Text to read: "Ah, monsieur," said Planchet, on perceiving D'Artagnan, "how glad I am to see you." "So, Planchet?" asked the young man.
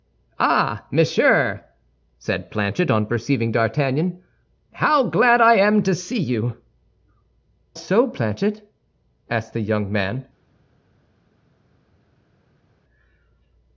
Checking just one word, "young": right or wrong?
right